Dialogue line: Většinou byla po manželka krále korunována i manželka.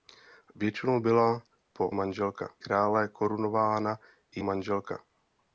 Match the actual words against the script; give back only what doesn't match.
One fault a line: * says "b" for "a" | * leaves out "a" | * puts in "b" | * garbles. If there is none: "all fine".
all fine